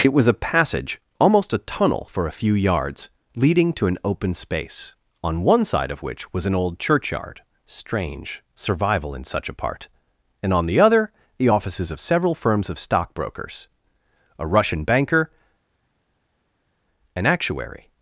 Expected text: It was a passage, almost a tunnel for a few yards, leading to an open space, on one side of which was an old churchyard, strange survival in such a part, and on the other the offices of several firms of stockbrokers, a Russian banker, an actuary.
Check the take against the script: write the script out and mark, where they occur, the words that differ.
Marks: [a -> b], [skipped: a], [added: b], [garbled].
It was a passage, almost a tunnel for a few yards, leading to an open space, on one side of which was an old churchyard, strange survival in such a part, and on the other the offices of several firms of stockbrokers, a Russian banker, an actuary.